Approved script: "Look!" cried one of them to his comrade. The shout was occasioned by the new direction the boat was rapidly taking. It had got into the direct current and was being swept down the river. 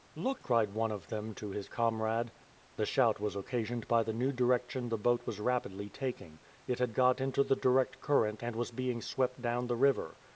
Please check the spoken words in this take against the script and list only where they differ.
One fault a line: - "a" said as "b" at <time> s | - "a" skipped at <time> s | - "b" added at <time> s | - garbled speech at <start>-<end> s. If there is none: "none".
none